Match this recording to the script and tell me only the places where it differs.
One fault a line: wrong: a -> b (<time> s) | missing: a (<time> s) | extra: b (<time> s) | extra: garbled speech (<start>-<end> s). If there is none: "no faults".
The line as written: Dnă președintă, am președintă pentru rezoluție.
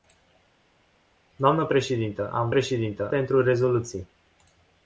no faults